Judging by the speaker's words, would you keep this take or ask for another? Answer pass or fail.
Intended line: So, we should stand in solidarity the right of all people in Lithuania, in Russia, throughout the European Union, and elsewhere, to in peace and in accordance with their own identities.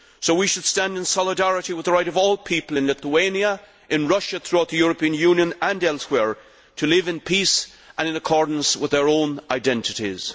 fail